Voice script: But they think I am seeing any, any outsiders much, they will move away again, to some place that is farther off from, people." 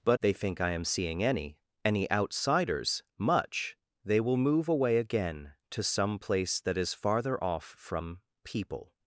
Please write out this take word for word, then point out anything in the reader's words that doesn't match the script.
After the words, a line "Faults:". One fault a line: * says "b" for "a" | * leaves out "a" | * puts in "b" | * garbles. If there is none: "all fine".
But they think I am seeing any, any outsiders much, they will move away again, to some place that is farther off from, people."
Faults:
all fine